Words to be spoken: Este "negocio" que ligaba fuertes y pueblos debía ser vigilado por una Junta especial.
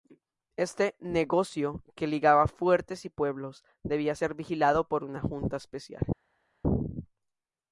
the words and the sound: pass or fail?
pass